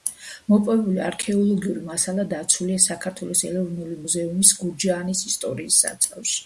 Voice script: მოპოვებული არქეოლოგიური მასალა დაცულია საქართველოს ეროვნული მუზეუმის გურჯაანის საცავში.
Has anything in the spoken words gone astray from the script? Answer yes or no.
yes